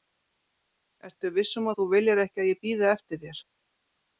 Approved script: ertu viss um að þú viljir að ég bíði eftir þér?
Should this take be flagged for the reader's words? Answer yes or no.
yes